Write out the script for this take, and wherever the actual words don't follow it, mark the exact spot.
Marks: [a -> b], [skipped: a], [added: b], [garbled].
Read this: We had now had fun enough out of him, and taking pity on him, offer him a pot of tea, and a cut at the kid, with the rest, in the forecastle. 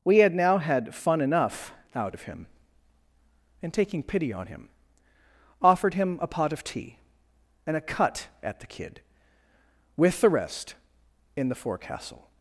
We had now had fun enough out of him, and taking pity on him, [offer -> offered] him a pot of tea, and a cut at the kid, with the rest, in the forecastle.